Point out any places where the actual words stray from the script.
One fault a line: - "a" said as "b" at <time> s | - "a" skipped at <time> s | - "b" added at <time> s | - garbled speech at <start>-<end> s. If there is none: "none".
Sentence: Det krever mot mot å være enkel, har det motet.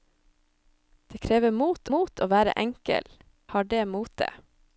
none